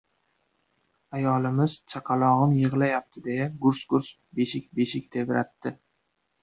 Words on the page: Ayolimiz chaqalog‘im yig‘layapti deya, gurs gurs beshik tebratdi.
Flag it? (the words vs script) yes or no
yes